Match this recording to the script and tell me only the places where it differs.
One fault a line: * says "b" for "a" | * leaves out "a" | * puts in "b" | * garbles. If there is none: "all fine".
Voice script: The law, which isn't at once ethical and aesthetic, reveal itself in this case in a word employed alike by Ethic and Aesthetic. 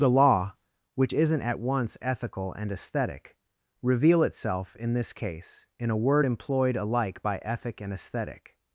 all fine